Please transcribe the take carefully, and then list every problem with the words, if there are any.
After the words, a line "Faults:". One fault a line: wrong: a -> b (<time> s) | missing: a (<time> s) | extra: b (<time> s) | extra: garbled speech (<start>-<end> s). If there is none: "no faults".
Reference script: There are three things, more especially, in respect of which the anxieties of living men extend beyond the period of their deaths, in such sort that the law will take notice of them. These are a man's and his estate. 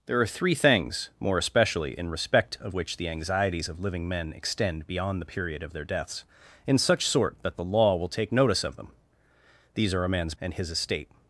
There are three things, more especially, in respect of which the anxieties of living men extend beyond the period of their deaths, in such sort that the law will take notice of them. These are a man's and his estate.
Faults:
no faults